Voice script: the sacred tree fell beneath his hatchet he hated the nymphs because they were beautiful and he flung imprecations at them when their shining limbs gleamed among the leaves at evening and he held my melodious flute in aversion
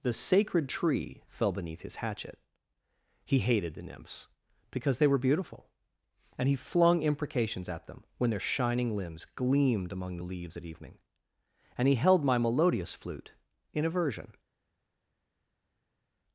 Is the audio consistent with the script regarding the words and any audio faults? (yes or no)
yes